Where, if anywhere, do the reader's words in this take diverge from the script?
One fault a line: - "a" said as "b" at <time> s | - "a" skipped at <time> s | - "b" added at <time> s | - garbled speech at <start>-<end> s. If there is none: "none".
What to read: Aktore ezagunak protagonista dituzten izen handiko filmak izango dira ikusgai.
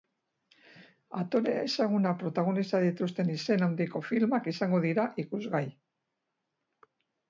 none